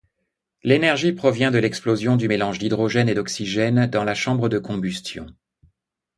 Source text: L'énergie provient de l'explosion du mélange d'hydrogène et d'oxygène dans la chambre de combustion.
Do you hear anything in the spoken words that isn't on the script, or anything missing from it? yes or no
no